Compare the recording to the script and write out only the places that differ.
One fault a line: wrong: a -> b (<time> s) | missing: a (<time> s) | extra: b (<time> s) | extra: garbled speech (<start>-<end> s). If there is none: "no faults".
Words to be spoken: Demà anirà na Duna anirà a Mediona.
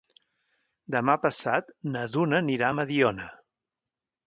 wrong: anirà -> passat (1.2 s)